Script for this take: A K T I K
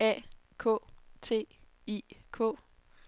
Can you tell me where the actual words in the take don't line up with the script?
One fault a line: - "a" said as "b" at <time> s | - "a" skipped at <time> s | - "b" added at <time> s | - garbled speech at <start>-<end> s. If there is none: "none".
none